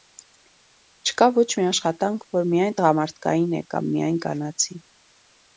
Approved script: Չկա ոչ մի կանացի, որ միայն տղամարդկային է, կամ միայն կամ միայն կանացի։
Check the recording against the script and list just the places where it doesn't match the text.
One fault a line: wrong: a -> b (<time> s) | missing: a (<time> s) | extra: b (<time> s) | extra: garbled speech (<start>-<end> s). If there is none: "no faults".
wrong: կանացի -> աշխատանք (1.7 s)
missing: կամ միայն (4.2 s)